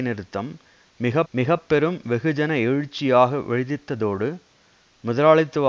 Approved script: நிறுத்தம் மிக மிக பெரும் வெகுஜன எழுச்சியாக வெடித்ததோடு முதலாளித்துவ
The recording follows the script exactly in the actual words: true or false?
true